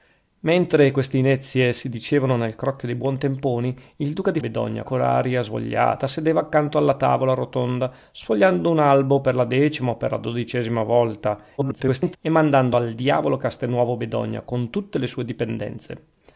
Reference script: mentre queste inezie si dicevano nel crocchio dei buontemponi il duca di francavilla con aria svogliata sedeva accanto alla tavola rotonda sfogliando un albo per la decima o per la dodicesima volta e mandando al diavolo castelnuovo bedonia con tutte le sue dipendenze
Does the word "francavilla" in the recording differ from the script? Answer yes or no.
yes